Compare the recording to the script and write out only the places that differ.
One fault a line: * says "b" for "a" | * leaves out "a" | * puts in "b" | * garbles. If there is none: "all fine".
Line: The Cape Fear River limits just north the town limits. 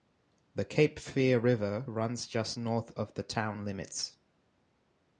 * says "runs" for "limits"
* puts in "of"